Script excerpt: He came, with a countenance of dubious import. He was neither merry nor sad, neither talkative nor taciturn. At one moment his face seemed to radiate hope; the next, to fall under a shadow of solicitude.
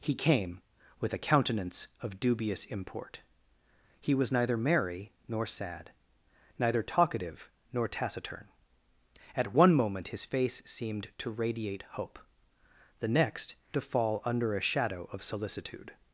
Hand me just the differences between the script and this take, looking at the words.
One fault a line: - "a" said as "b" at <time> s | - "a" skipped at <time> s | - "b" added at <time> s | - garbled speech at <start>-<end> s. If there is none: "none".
none